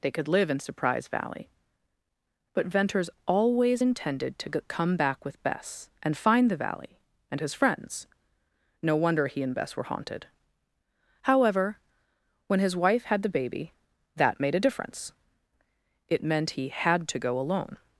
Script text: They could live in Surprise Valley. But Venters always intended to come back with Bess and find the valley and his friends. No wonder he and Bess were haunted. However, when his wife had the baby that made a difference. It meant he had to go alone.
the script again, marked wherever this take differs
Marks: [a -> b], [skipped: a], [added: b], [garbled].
They could live in Surprise Valley. But Venters always intended to come back with Bess and find the valley and his friends. No wonder he and Bess were haunted. However, when his wife had the baby that made a difference. It meant he had to go alone.